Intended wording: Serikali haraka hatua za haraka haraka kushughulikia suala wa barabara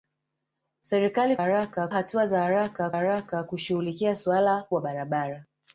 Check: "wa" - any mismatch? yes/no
no